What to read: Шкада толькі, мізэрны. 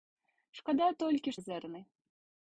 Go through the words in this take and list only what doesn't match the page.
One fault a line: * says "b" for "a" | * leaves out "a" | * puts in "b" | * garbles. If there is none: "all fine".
all fine